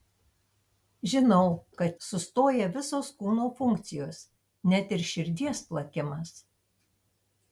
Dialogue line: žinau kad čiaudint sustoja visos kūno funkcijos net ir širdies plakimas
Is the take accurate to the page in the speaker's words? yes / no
no